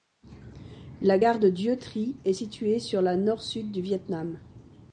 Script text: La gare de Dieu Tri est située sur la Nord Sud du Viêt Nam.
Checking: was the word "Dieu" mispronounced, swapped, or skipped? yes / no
no